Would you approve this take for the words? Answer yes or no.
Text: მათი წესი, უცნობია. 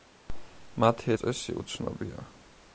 yes